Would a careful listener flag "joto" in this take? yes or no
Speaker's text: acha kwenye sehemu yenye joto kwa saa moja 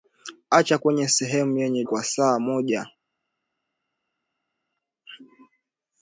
yes